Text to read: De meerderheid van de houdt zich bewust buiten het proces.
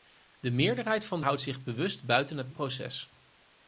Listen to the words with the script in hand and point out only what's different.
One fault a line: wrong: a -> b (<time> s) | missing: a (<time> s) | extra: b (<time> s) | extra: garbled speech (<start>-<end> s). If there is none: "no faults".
no faults